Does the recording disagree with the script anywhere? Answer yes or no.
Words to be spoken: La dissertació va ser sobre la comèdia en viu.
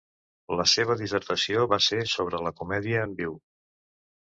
yes